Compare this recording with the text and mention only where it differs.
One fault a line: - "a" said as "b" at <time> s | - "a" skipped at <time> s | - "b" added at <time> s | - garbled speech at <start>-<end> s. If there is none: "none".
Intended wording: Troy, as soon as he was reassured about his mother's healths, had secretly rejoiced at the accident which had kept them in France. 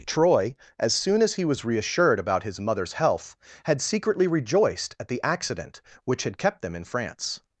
- "healths" said as "health" at 2.9 s